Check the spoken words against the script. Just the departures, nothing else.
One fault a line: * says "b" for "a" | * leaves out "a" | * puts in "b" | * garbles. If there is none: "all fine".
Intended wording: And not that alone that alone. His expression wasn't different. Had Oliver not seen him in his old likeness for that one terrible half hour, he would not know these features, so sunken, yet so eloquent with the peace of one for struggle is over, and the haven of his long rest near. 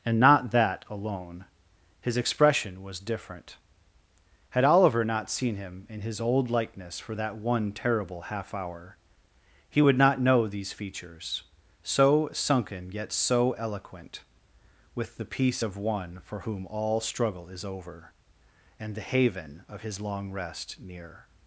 * leaves out "that alone"
* says "was" for "wasn't"
* puts in "whom all"